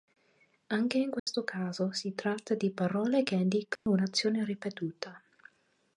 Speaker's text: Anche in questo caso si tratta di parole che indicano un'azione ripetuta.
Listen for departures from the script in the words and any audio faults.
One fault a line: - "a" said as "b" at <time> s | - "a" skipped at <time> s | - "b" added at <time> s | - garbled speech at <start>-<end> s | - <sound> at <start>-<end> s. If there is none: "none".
- dropout at 1.2-1.3 s
- dropout at 3.8-3.9 s